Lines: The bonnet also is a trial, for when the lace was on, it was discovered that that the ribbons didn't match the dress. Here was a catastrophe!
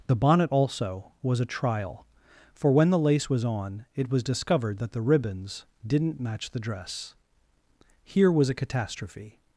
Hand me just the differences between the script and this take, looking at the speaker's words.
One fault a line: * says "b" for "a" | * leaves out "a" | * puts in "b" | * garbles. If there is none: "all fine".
* says "was" for "is"
* leaves out "that"